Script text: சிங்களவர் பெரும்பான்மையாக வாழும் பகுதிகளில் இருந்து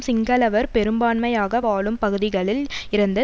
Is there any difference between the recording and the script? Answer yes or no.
no